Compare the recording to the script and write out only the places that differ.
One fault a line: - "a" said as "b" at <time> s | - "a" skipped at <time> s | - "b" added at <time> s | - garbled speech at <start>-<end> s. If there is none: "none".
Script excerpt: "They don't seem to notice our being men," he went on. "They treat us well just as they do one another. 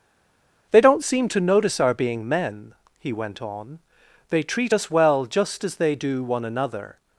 none